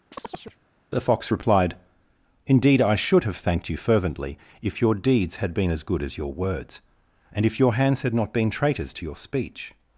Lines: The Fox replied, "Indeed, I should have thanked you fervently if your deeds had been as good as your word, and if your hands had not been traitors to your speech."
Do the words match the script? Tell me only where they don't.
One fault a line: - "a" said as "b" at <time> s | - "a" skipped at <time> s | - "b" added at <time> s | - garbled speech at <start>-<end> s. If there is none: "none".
- "word" said as "words" at 6.3 s